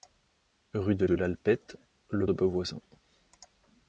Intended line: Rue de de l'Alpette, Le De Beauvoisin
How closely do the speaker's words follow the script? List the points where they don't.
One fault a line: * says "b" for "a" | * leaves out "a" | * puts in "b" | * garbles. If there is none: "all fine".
all fine